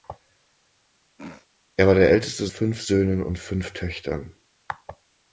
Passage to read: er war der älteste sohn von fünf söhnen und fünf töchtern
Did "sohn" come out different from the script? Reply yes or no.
yes